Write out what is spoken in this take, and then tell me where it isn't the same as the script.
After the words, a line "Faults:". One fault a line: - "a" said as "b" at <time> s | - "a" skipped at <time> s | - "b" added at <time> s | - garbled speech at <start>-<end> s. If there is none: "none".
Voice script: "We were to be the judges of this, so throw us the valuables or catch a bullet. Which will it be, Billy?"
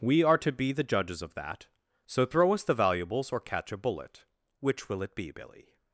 "We are to be the judges of that, so throw us the valuables or catch a bullet. Which will it be, Billy?"
Faults:
- "were" said as "are" at 0.2 s
- "this" said as "that" at 1.4 s